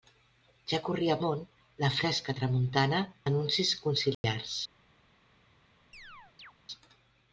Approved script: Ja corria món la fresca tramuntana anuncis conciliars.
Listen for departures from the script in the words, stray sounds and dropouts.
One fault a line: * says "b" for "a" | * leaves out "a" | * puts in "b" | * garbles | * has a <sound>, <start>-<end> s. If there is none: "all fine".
* has a dropout, 4.1-4.2 s
* has a chirp, 5.9-6.5 s